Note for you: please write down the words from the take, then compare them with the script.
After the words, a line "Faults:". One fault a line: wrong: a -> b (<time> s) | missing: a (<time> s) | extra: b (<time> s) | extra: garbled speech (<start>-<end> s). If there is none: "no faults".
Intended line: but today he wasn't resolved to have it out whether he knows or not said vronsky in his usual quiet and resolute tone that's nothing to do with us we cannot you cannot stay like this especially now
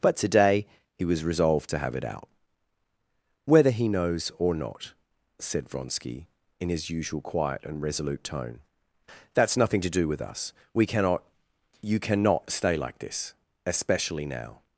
but today he was resolved to have it out whether he knows or not said vronsky in his usual quiet and resolute tone that's nothing to do with us we cannot you cannot stay like this especially now
Faults:
wrong: wasn't -> was (1.1 s)